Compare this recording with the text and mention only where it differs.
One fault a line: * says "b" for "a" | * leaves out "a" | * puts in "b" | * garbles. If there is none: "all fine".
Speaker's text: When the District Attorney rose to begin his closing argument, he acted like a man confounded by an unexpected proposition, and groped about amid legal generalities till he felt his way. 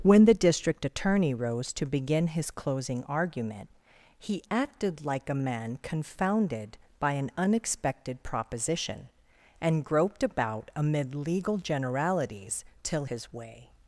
* leaves out "he felt"